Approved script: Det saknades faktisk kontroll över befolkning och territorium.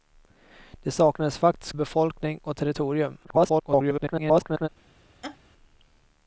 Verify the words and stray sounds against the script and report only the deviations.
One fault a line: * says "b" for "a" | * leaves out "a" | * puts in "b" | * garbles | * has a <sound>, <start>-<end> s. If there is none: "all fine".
* leaves out "kontroll över"
* garbles
* has a laugh, 5.2-5.4 s